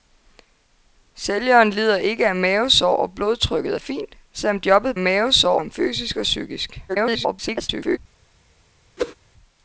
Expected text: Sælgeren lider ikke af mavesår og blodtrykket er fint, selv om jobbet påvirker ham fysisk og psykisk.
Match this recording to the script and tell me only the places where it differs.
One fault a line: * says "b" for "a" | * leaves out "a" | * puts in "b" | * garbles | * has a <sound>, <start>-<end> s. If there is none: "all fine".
* says "mavesår" for "påvirker"
* garbles
* has a whoosh, 9.0-9.1 s